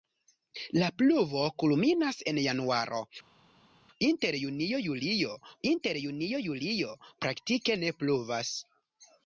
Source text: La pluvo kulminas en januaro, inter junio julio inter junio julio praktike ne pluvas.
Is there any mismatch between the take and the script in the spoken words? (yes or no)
no